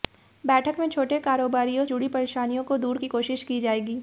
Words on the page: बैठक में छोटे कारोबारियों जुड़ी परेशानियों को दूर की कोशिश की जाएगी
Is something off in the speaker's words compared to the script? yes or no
no